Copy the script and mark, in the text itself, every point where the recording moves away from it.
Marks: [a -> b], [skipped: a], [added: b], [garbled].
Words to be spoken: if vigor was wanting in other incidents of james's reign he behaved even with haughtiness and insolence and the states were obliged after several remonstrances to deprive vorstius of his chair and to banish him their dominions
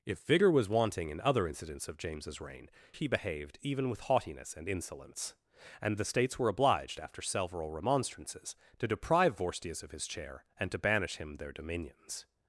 if vigor was wanting in other incidents of james's reign he behaved even with haughtiness and insolence and the states were obliged after several remonstrances to deprive vorstius of his chair and to banish him their dominions